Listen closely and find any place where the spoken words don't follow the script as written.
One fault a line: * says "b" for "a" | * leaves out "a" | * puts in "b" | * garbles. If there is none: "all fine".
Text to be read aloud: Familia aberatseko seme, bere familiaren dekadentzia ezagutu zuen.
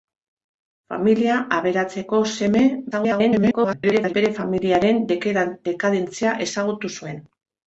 * garbles